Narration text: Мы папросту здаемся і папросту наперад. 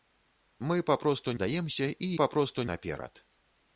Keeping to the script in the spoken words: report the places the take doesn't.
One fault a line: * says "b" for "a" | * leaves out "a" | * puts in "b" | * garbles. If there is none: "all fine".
all fine